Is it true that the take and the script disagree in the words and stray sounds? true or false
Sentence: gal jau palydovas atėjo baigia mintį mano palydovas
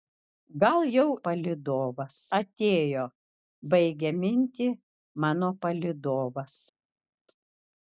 false